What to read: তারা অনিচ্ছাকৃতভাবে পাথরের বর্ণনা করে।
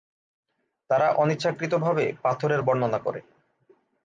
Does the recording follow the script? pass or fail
pass